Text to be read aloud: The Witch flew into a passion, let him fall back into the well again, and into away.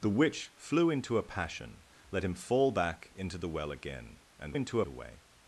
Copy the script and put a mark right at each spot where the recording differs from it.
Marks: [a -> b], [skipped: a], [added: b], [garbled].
The Witch flew into a passion, let him fall back into the well again, and into away.